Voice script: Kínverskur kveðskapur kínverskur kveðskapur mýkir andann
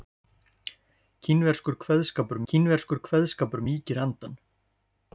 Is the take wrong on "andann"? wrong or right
right